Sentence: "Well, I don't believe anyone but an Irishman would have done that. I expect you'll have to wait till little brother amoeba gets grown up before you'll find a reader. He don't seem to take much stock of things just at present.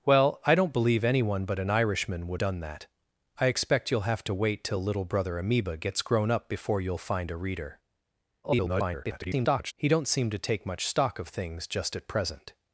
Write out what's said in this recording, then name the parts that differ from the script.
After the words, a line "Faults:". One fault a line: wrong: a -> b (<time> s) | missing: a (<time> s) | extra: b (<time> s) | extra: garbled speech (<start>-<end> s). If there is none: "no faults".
"Well, I don't believe anyone but an Irishman would done that. I expect you'll have to wait till little brother amoeba gets grown up before you'll find a reader. [garbled] He don't seem to take much stock of things just at present.
Faults:
missing: have (2.4 s)
extra: garbled speech (8.4-9.7 s)